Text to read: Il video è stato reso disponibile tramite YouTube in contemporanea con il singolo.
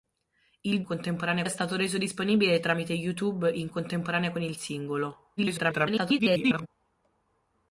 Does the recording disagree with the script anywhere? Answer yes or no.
yes